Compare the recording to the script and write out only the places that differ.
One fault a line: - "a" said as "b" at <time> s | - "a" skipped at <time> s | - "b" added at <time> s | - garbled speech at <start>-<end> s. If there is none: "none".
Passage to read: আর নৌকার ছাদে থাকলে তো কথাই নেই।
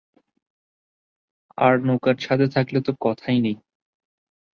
none